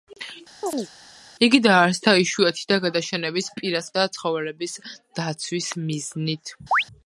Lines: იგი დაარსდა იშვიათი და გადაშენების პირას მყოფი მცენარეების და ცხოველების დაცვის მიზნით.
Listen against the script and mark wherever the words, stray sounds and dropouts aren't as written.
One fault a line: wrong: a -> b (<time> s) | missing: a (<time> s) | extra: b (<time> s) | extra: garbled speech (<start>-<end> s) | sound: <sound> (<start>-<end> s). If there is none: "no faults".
sound: chirp (0.6-0.9 s)
missing: მყოფი მცენარეების (3.9 s)
sound: chirp (6.7-6.8 s)